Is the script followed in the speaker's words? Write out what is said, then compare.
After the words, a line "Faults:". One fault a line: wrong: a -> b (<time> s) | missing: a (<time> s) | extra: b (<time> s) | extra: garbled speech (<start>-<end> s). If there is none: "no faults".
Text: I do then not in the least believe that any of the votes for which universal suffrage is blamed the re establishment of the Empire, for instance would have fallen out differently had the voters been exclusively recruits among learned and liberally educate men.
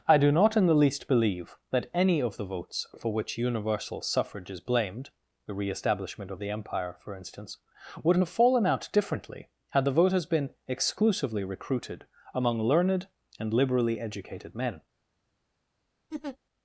I do not in the least believe that any of the votes for which universal suffrage is blamed the re establishment of the Empire, for instance would have fallen out differently had the voters been exclusively recruited among learned and liberally educated men.
Faults:
missing: then (0.3 s)
wrong: recruits -> recruited (11.4 s)
wrong: educate -> educated (14.0 s)